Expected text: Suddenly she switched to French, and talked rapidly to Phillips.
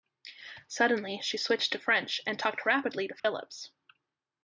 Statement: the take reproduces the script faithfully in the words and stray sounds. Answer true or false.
false